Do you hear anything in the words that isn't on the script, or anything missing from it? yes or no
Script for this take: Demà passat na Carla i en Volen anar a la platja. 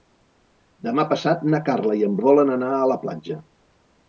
no